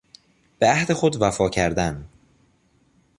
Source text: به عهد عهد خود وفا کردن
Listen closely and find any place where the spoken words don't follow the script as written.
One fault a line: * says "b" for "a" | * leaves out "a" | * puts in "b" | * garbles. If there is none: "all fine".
* leaves out "عهد"